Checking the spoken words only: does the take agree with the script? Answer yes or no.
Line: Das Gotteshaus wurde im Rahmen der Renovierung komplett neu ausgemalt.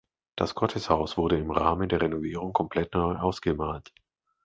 yes